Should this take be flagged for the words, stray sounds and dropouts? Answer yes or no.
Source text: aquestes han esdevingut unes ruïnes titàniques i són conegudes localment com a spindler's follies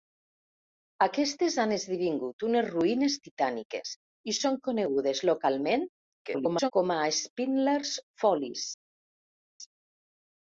yes